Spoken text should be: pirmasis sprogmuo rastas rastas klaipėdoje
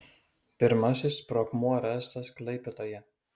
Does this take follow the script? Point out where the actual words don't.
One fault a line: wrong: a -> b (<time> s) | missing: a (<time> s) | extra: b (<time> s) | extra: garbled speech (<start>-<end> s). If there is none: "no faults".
missing: rastas (2.3 s)